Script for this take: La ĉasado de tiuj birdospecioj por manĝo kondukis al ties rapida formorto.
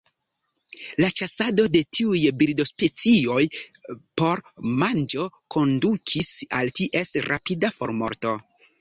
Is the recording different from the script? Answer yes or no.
no